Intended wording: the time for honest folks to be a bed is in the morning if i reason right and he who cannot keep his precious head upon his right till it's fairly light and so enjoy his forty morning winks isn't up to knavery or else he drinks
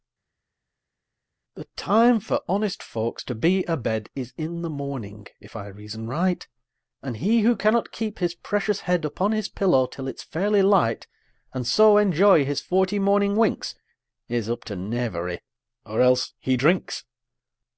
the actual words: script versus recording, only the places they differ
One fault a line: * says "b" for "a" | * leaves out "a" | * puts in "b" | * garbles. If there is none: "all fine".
* says "pillow" for "right"
* says "is" for "isn't"